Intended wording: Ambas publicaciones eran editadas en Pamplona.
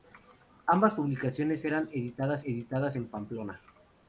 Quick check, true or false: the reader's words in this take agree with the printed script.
false